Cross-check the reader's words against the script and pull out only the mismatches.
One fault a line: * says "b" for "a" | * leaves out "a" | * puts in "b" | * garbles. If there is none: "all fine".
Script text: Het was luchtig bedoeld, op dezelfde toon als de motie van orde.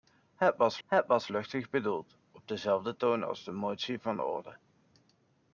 * puts in "het was"